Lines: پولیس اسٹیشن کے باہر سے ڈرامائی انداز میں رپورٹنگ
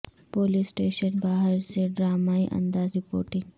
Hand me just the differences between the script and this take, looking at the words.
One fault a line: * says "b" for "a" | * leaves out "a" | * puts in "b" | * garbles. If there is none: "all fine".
* leaves out "کے"
* leaves out "میں"